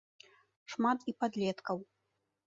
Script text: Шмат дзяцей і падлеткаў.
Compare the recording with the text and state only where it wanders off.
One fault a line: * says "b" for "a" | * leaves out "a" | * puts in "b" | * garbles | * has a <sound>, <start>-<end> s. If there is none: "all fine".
* leaves out "дзяцей"